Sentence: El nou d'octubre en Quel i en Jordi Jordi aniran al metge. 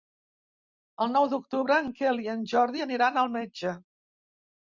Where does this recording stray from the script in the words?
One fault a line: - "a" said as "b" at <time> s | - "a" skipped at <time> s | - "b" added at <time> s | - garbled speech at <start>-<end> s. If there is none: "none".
- "Jordi" skipped at 2.8 s